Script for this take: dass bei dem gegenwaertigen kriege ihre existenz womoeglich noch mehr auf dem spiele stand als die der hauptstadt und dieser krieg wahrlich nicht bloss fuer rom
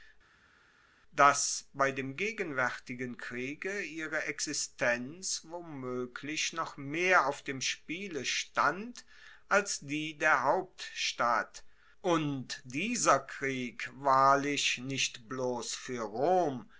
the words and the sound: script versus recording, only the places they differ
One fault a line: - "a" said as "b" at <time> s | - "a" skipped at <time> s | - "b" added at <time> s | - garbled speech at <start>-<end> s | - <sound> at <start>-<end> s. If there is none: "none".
none